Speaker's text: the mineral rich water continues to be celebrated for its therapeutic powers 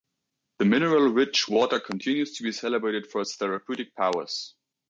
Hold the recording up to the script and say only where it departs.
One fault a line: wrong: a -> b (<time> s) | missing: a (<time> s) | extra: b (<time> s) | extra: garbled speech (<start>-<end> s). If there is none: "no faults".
no faults